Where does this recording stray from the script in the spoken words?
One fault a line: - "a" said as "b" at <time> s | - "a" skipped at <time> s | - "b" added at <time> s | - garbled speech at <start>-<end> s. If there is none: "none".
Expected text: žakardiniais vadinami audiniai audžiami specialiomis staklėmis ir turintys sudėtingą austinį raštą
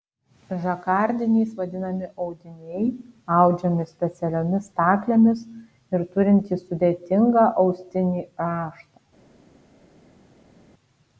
none